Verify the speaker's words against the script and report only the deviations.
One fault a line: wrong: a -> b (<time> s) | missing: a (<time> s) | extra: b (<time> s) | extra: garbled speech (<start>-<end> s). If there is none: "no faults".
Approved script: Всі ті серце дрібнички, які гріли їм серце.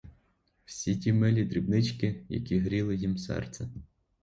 wrong: серце -> милі (1.1 s)